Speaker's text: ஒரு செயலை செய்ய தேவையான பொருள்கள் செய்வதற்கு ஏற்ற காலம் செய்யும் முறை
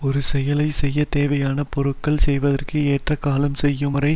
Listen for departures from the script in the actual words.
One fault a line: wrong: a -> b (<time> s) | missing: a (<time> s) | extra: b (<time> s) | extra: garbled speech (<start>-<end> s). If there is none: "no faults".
no faults